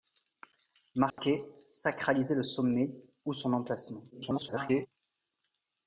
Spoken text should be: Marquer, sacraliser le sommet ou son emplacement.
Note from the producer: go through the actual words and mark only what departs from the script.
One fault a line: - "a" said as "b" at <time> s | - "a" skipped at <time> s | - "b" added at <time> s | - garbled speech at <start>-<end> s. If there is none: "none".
- garbled speech at 4.1-4.9 s